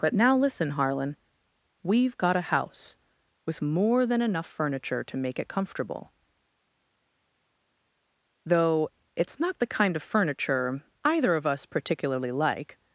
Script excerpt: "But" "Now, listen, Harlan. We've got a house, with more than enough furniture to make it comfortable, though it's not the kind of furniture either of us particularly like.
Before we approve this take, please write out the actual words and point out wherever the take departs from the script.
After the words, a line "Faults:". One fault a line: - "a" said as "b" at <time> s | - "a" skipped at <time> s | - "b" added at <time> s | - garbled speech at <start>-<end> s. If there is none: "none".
"But" "Now, listen, Harlan. We've got a house, with more than enough furniture to make it comfortable, though it's not the kind of furniture either of us particularly like.
Faults:
none